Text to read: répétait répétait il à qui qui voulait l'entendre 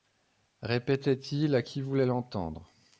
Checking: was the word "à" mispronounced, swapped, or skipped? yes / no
no